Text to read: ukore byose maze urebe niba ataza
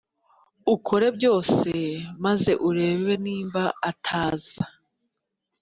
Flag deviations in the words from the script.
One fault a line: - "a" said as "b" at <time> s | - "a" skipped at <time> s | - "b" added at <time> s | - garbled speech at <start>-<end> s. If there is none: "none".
none